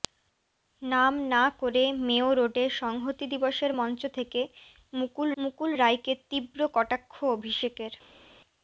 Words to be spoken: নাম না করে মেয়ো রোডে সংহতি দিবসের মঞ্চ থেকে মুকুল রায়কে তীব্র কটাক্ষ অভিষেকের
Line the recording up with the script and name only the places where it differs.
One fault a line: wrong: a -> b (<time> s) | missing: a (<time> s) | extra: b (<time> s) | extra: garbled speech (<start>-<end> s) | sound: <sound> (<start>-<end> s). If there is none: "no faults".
extra: মুকুল (5.4 s)